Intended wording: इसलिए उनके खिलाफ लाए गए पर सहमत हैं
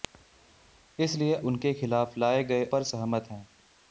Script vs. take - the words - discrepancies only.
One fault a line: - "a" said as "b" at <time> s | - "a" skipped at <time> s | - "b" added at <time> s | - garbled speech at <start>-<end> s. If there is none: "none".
none